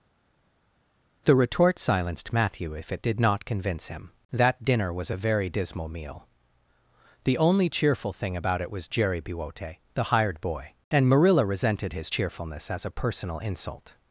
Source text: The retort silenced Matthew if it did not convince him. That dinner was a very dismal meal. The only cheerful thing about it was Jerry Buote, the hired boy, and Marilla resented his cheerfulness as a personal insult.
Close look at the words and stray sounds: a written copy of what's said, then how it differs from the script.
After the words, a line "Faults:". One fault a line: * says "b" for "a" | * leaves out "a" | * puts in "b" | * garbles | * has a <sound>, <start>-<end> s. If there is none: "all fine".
The retort silenced Matthew if it did not convince him. That dinner was a very dismal meal. The only cheerful thing about it was Jerry Buote, the hired boy, and Marilla resented his cheerfulness as a personal insult.
Faults:
all fine